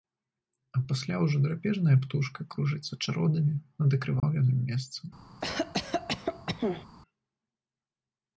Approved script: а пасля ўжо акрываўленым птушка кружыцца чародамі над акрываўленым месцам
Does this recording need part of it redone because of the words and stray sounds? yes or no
yes